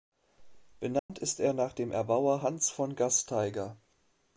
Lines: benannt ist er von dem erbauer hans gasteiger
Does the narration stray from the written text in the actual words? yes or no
yes